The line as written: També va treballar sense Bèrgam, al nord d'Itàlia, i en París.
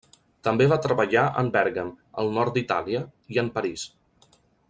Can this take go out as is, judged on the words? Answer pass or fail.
fail